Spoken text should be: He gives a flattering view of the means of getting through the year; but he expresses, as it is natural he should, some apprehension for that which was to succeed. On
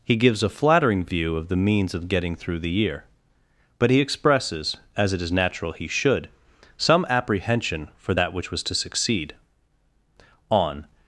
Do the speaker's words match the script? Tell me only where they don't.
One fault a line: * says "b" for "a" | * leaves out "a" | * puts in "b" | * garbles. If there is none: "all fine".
all fine